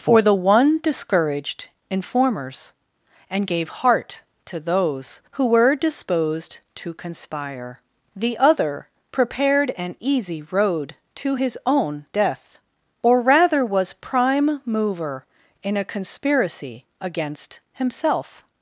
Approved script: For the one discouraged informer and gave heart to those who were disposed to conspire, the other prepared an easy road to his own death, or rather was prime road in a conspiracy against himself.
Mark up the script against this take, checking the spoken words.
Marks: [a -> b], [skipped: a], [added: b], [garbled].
For the one discouraged [informer -> informers] and gave heart to those who were disposed to conspire, the other prepared an easy road to his own death, or rather was prime [road -> mover] in a conspiracy against himself.